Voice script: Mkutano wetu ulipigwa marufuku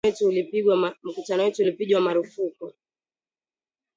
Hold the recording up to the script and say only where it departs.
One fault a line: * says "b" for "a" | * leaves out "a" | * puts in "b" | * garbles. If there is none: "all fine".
all fine